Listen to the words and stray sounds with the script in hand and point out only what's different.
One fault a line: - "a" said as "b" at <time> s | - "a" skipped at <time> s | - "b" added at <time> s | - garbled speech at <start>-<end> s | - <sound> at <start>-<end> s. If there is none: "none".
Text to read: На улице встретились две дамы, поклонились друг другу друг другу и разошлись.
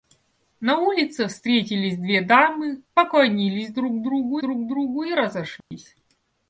- dropout at 5.6-5.7 s